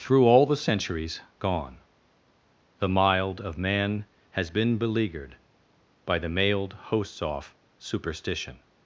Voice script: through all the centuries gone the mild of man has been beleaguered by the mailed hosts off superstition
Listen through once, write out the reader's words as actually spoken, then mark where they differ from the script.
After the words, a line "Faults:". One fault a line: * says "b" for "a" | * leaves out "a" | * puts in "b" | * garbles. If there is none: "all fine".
through all the centuries gone the mild of man has been beleaguered by the mailed hosts off superstition
Faults:
all fine